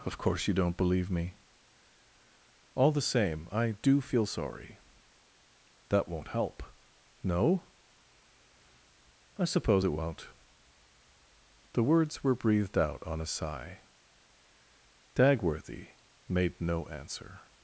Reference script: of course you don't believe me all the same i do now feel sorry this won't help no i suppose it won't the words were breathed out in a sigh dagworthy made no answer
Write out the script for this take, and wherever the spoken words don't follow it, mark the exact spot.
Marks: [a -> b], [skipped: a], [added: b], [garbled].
of course you don't believe me all the same i do [skipped: now] feel sorry [this -> that] won't help no i suppose it won't the words were breathed out [in -> on] a sigh dagworthy made no answer